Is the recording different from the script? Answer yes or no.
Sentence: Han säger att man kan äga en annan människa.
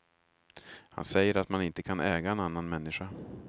yes